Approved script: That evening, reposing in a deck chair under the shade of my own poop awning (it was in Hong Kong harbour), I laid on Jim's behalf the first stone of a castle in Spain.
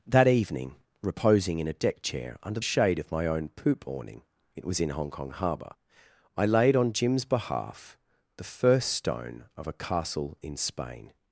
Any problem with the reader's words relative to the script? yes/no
yes